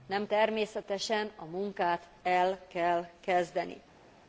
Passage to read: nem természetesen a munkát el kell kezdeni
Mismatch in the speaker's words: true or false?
false